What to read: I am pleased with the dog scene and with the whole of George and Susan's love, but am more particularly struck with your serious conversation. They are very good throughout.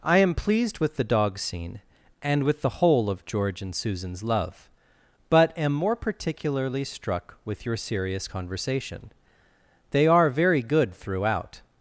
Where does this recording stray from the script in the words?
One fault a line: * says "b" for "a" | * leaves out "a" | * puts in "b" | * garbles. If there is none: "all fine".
all fine